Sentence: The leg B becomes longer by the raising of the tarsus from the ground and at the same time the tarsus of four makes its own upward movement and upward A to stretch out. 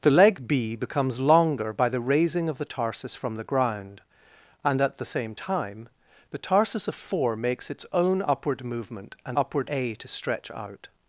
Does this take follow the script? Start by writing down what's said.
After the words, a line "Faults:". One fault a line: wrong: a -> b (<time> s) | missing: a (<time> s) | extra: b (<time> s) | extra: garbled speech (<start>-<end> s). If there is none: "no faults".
The leg B becomes longer by the raising of the tarsus from the ground and at the same time the tarsus of four makes its own upward movement and upward A to stretch out.
Faults:
no faults